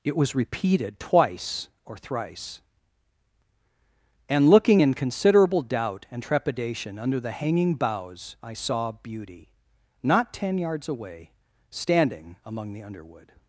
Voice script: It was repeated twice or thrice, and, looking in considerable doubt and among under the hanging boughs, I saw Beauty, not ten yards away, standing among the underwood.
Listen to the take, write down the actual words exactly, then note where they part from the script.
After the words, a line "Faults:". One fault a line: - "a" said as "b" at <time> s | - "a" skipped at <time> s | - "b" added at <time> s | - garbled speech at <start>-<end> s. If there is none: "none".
It was repeated twice or thrice, and, looking in considerable doubt and trepidation under the hanging boughs, I saw Beauty, not ten yards away, standing among the underwood.
Faults:
- "among" said as "trepidation" at 6.2 s